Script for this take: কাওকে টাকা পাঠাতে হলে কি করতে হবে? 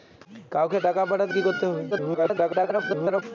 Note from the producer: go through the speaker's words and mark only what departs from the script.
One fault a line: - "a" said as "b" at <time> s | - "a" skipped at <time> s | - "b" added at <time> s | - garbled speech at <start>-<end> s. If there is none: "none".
- "হলে" skipped at 1.3 s
- garbled speech at 1.9-3.2 s